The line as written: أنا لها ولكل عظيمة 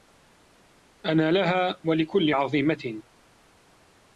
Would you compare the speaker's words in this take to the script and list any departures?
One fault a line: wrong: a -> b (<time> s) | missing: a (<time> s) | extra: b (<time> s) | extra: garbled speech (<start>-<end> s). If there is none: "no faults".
no faults